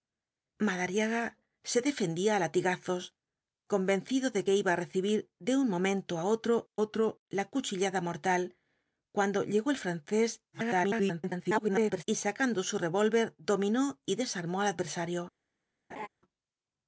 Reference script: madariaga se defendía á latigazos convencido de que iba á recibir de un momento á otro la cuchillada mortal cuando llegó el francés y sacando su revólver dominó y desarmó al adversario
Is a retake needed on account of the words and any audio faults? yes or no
yes